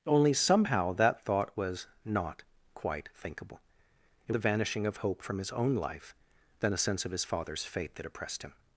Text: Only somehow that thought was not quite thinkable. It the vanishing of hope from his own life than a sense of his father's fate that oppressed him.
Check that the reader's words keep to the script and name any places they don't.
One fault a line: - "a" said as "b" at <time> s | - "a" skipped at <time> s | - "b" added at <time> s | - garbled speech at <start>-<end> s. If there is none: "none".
none